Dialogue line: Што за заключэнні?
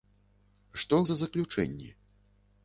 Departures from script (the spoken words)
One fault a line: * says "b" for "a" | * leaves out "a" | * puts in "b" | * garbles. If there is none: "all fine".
all fine